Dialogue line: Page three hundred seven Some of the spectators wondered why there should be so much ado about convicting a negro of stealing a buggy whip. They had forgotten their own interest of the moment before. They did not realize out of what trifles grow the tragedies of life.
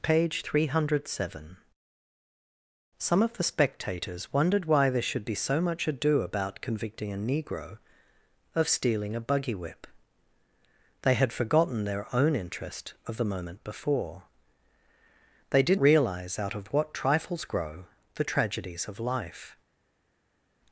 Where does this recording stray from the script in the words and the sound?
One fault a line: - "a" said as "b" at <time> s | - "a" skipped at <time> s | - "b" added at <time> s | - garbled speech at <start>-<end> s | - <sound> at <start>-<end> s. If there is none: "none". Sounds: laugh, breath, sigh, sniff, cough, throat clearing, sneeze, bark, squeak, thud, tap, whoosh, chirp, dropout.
- "not" skipped at 15.8 s